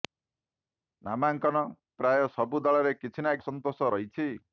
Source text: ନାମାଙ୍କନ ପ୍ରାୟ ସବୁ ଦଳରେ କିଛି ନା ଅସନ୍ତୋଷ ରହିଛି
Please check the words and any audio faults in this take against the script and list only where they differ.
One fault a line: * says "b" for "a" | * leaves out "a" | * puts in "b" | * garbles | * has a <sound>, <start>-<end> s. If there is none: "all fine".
all fine